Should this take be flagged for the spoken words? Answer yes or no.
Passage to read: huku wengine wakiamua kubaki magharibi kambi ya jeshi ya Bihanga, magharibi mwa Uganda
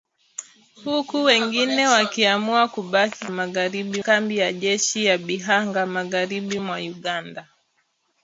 no